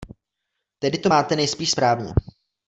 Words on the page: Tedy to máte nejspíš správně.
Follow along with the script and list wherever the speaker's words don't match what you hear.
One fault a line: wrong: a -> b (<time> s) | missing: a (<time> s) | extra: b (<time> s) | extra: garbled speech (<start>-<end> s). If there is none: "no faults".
no faults